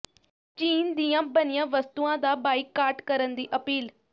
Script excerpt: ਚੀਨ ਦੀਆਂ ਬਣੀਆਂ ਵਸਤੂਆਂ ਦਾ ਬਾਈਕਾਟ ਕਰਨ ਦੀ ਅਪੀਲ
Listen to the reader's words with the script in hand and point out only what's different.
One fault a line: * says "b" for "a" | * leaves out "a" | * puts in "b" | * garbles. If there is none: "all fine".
all fine